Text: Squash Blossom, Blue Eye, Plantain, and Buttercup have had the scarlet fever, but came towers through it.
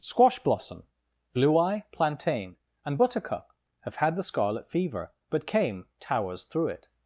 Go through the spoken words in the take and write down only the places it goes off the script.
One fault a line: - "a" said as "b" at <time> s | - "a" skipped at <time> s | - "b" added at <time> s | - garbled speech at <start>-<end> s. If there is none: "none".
none